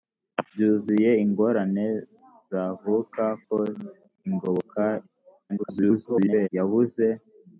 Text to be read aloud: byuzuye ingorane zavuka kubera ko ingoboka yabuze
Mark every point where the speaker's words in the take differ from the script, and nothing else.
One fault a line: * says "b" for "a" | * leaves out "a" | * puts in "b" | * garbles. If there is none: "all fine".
* leaves out "kubera"
* garbles